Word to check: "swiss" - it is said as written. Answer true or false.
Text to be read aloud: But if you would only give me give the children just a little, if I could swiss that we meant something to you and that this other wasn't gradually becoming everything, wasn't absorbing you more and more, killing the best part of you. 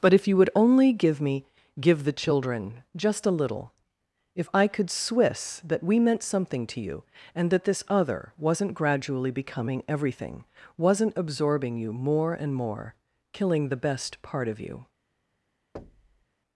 true